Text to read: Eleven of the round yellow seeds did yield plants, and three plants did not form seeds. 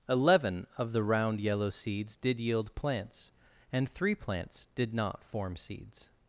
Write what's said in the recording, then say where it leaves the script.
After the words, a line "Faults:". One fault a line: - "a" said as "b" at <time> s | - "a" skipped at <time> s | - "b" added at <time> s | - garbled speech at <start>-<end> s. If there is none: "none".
Eleven of the round yellow seeds did yield plants, and three plants did not form seeds.
Faults:
none